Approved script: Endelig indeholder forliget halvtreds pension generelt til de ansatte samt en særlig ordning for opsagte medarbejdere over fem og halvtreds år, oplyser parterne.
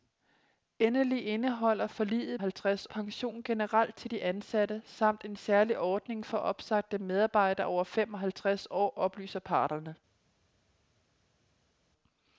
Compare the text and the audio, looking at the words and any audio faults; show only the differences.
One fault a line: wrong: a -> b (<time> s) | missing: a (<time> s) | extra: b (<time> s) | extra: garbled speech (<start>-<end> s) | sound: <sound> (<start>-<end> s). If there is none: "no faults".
no faults